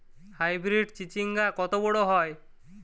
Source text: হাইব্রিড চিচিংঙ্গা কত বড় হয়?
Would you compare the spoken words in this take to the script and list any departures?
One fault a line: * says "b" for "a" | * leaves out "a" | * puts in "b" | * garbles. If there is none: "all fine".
all fine